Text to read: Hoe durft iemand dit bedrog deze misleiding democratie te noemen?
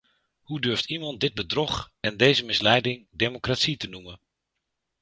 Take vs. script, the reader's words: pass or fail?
fail